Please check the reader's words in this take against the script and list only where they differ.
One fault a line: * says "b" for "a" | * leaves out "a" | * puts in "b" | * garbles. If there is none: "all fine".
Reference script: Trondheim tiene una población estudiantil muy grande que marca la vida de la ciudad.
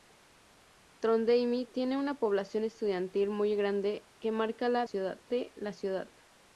* says "ciudad" for "vida"